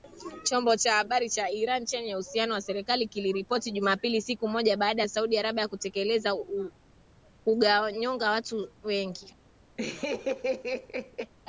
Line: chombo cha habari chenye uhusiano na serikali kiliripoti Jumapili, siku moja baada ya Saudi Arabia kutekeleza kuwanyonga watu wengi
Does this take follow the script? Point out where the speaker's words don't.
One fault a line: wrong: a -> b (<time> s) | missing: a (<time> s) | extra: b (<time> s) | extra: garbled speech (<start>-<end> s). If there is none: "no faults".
extra: cha Iran (1.3 s)